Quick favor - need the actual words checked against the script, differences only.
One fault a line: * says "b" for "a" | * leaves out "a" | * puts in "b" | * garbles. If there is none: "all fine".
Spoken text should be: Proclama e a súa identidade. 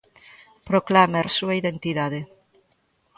all fine